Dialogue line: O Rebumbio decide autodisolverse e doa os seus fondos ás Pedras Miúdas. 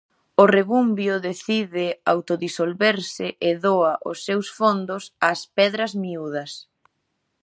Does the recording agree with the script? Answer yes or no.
yes